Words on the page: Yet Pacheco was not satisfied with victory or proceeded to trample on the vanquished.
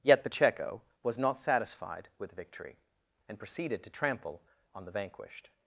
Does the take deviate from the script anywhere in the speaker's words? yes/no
yes